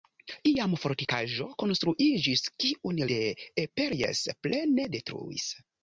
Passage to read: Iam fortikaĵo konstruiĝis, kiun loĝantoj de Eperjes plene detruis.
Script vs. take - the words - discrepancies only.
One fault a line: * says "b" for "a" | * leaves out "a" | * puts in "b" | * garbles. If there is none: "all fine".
* leaves out "loĝantoj"